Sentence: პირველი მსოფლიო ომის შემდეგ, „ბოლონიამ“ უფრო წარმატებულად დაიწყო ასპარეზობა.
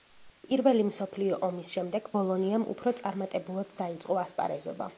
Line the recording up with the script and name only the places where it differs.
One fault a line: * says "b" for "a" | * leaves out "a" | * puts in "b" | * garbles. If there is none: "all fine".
all fine